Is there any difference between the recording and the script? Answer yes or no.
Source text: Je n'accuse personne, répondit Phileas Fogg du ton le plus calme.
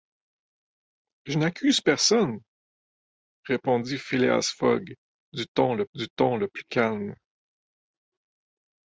yes